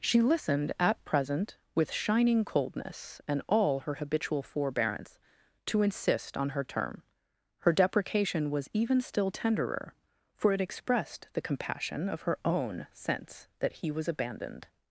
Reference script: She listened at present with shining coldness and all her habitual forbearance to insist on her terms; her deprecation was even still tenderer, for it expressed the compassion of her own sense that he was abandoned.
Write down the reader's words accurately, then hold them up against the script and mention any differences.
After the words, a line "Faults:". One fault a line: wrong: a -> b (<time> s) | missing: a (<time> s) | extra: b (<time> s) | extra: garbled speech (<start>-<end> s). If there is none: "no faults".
She listened at present with shining coldness and all her habitual forbearance to insist on her term; her deprecation was even still tenderer, for it expressed the compassion of her own sense that he was abandoned.
Faults:
wrong: terms -> term (6.6 s)